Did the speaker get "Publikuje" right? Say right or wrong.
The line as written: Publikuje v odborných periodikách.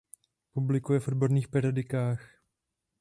right